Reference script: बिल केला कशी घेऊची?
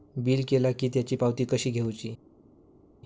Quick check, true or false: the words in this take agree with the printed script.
false